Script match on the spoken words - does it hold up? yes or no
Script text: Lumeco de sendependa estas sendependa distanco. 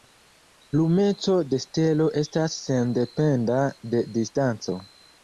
no